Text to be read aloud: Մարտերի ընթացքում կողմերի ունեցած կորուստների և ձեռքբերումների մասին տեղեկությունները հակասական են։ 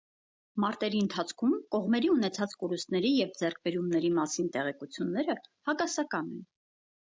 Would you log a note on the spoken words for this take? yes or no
no